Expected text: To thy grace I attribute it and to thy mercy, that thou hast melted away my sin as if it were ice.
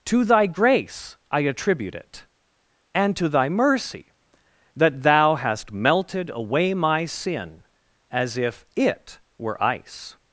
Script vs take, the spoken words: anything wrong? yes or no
no